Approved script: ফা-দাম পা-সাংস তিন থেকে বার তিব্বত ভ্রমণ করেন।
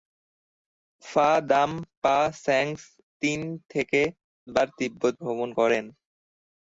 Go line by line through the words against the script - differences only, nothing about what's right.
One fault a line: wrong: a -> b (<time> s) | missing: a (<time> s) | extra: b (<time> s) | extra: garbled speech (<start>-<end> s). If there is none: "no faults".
no faults